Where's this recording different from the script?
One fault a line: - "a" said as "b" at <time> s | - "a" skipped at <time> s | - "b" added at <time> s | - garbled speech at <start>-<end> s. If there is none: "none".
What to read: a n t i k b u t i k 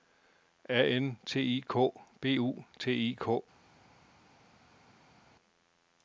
none